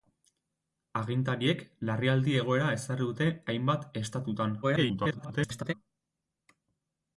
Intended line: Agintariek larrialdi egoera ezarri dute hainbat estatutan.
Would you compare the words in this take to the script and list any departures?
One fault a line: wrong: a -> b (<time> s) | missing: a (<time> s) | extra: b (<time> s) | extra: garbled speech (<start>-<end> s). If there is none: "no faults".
extra: garbled speech (4.6-5.7 s)